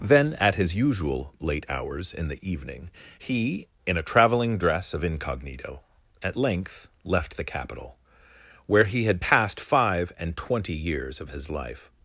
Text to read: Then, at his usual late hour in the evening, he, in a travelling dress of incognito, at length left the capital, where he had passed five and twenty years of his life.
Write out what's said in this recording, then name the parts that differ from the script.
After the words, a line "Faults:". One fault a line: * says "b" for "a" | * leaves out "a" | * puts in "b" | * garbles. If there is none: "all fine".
Then, at his usual late hours in the evening, he, in a travelling dress of incognito, at length left the capital, where he had passed five and twenty years of his life.
Faults:
* says "hours" for "hour"